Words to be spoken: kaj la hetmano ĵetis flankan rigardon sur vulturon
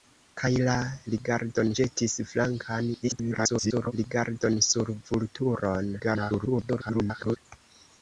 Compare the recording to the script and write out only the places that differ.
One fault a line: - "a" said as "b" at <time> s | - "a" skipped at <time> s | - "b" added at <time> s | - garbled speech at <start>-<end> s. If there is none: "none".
- "hetmano" said as "rigardon" at 1.1 s
- garbled speech at 3.0-3.9 s
- garbled speech at 6.0-7.4 s